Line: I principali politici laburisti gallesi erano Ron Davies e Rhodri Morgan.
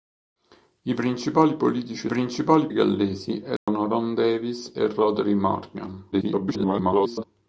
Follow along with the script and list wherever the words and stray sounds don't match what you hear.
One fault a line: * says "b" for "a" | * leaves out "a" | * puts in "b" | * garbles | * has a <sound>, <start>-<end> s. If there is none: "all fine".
* says "principali" for "laburisti"
* has a dropout, 3.6-3.7 s
* garbles